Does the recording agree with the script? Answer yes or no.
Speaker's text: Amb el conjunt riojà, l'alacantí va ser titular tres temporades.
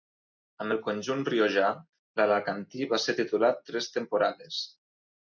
yes